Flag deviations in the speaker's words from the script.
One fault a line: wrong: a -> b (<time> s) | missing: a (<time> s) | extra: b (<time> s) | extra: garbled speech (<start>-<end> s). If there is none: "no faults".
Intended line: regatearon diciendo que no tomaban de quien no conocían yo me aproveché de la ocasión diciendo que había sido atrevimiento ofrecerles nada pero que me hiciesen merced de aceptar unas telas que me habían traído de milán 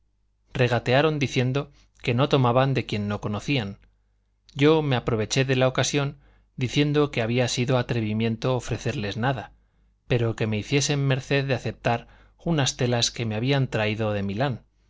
no faults